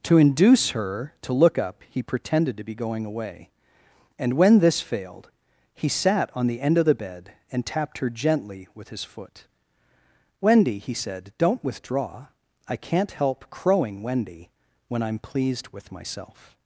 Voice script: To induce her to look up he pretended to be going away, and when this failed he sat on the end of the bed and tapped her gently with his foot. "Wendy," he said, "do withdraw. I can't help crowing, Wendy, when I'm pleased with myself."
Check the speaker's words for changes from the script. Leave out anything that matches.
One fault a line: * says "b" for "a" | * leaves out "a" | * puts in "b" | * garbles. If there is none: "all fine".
* says "don't" for "do"